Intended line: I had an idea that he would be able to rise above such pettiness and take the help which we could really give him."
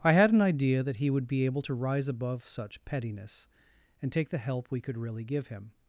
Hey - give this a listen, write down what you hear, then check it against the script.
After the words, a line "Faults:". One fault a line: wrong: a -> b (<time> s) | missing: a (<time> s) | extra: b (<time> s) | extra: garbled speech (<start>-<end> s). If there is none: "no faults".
I had an idea that he would be able to rise above such pettiness and take the help we could really give him."
Faults:
missing: which (4.7 s)